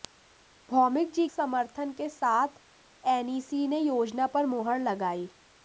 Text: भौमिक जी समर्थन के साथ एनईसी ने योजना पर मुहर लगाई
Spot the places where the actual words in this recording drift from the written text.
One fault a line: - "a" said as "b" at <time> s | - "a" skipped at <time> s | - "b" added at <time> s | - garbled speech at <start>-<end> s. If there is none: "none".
none